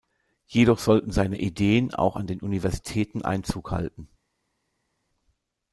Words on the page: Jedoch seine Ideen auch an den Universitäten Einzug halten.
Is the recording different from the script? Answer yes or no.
yes